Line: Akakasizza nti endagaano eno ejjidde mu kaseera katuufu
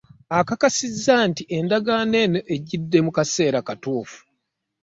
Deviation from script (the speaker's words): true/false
false